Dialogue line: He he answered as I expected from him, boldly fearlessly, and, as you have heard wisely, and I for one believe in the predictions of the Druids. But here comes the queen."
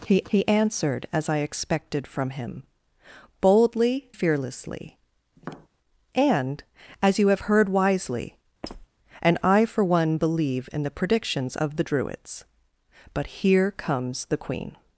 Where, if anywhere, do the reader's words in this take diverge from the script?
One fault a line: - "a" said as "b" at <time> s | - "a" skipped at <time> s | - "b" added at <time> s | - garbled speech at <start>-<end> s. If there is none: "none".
none